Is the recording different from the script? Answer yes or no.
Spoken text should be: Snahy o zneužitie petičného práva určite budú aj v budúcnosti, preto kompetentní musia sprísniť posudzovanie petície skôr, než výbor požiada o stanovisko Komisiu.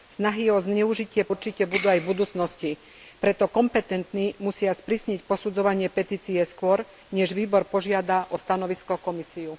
yes